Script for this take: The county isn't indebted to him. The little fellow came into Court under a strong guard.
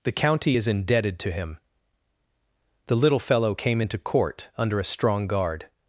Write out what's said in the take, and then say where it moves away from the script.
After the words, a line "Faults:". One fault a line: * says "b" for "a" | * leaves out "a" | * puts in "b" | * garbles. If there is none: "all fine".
The county is indebted to him. The little fellow came into Court under a strong guard.
Faults:
* says "is" for "isn't"